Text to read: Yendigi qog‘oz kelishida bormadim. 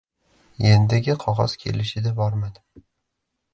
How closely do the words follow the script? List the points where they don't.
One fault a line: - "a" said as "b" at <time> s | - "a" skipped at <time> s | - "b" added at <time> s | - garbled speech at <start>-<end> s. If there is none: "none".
none